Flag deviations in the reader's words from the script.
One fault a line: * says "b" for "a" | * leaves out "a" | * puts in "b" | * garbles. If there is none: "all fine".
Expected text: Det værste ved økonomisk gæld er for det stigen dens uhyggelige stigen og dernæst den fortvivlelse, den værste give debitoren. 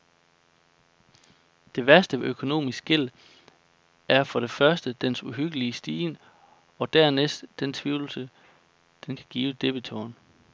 * says "første" for "stigen"
* says "kan" for "værste"